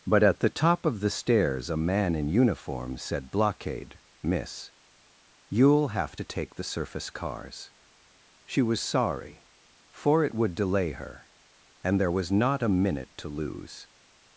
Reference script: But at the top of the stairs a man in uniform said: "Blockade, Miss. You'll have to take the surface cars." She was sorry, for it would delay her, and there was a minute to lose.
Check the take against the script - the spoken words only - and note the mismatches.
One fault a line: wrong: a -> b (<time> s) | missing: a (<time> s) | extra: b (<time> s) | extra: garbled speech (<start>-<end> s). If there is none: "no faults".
extra: not (12.3 s)